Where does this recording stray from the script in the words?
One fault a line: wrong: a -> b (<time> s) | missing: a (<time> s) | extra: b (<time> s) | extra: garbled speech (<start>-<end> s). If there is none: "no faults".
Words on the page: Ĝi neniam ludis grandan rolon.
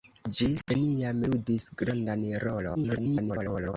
extra: garbled speech (2.7-3.7 s)